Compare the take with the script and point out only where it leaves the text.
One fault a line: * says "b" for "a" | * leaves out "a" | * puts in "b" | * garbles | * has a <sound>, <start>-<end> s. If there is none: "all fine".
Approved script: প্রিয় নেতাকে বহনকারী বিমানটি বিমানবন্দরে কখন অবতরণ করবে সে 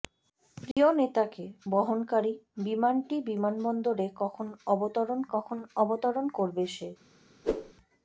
* has a dropout, 0.7-0.8 s
* puts in "কখন অবতরণ"
* has a whoosh, 7.4-7.7 s